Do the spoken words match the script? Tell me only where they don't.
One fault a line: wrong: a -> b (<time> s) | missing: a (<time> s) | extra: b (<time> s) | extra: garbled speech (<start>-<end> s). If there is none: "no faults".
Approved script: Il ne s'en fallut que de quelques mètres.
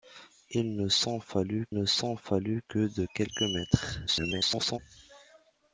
extra: ne s'en fallut (1.7 s)
extra: garbled speech (4.1-4.8 s)